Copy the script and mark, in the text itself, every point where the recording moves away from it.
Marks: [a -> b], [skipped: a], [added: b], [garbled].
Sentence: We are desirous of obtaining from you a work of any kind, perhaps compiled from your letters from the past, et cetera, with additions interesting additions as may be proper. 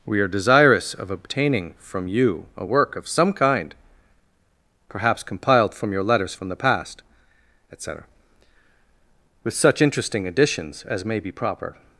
We are desirous of obtaining from you a work of [any -> some] kind, perhaps compiled from your letters from the past, et cetera, with [additions -> such] interesting additions as may be proper.